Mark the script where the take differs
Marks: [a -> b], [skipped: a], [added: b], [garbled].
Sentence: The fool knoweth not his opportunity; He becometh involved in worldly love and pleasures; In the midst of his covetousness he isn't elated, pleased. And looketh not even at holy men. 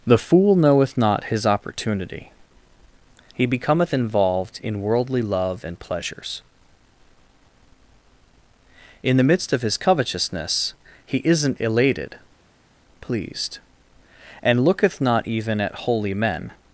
The fool knoweth not his opportunity; He becometh involved in worldly love and pleasures; In the midst of his covetousness he isn't elated, pleased. And looketh not even at holy men.